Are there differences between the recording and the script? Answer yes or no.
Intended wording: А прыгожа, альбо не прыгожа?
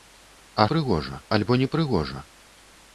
no